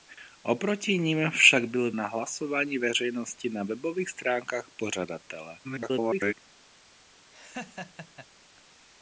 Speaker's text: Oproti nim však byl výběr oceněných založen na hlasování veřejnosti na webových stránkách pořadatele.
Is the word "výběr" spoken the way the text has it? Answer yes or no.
no